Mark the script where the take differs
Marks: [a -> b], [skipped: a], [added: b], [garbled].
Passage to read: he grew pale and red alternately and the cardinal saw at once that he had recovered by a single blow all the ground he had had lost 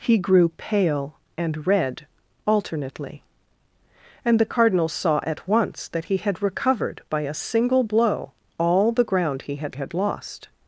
he grew pale and red alternately and the cardinal saw at once that he had recovered by a single blow all the ground he had had lost